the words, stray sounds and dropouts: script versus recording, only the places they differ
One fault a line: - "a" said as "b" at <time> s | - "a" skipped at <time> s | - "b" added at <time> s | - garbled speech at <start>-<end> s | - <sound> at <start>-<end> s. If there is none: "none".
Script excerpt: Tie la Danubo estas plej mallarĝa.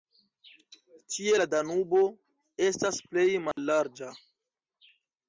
- dropout at 3.5-3.6 s